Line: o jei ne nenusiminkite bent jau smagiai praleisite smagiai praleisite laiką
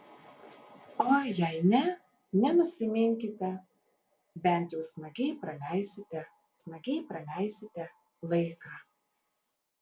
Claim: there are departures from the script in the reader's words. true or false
false